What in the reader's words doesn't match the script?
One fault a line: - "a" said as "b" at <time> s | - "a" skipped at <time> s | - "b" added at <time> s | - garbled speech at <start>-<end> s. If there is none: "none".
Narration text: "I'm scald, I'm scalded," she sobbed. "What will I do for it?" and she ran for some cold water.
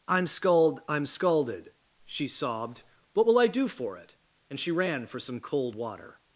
none